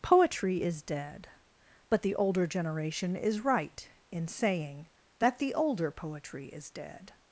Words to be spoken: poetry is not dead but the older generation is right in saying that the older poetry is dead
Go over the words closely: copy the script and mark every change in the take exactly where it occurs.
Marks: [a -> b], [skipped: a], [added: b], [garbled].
poetry is [skipped: not] dead but the older generation is right in saying that the older poetry is dead